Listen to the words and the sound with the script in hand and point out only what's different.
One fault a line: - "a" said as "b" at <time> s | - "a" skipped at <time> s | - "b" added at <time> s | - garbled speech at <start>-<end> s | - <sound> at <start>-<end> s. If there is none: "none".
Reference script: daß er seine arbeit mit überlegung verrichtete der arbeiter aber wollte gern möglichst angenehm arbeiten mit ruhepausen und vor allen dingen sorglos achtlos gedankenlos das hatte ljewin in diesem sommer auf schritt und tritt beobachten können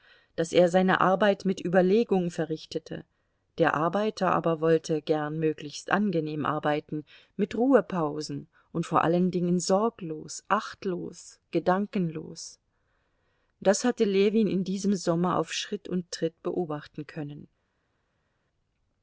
none